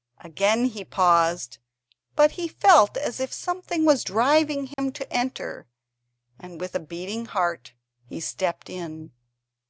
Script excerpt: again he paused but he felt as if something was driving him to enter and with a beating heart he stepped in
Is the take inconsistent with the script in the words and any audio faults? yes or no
yes